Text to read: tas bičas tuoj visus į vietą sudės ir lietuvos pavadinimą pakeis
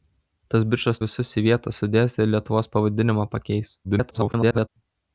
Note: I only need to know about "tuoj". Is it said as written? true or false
false